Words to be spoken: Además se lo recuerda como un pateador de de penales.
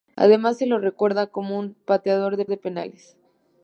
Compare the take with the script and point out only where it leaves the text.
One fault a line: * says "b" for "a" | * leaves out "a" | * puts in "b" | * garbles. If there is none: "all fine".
all fine